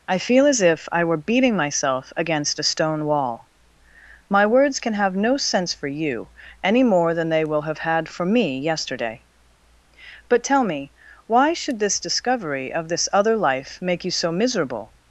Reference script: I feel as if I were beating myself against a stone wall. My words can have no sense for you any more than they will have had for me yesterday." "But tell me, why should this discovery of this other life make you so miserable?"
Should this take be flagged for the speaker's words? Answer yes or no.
no